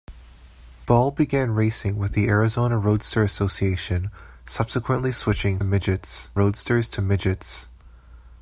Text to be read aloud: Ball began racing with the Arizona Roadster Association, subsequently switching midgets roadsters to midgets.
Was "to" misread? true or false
false